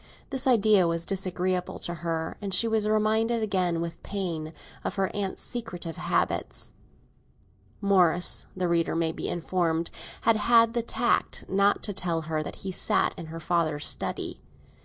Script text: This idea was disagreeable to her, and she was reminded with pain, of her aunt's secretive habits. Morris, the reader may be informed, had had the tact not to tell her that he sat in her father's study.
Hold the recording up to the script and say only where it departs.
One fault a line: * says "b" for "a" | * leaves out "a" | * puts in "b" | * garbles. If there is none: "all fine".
* puts in "again"